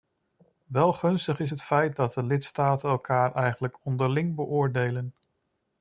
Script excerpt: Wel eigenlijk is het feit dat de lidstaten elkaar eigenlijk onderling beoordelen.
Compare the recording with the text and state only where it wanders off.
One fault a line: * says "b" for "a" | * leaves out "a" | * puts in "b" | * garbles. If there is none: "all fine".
* says "gunstig" for "eigenlijk"